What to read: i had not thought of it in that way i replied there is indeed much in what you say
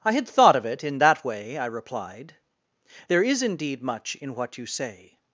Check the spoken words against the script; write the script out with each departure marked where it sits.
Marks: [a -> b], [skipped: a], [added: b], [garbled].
i had [skipped: not] thought of it in that way i replied there is indeed much in what you say